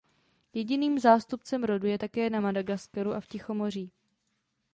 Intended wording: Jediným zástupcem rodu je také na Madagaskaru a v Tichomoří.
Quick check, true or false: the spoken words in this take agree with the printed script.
true